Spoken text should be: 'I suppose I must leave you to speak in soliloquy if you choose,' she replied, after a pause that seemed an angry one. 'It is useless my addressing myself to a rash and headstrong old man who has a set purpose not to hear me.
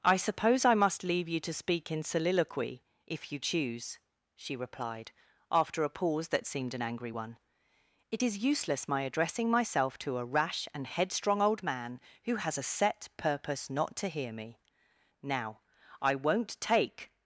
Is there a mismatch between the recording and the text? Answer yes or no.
yes